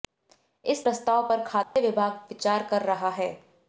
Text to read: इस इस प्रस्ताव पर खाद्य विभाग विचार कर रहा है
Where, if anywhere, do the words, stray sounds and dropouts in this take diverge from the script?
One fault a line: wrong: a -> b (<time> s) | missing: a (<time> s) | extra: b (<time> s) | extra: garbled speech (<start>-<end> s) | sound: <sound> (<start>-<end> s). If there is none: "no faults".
missing: इस (0.8 s)
sound: dropout (1.6-1.8 s)